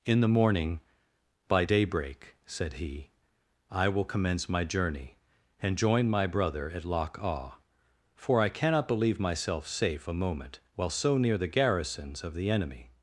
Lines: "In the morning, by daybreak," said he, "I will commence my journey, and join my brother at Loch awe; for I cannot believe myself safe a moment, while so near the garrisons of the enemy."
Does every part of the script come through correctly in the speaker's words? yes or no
yes